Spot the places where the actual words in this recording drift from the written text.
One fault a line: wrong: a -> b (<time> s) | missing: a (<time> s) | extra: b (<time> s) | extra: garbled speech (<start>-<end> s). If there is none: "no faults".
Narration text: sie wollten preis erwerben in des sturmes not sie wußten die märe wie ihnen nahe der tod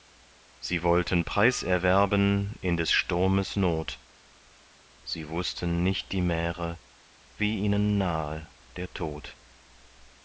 extra: nicht (5.8 s)